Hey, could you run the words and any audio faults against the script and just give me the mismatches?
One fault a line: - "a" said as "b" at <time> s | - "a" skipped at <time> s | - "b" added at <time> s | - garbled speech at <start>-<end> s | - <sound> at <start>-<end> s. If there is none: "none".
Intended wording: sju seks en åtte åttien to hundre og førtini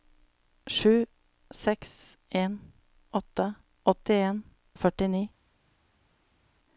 - "to hundre" skipped at 4.4 s